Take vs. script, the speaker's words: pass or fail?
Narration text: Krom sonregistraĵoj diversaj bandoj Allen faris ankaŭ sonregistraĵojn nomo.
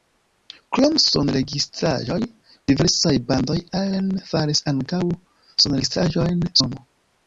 pass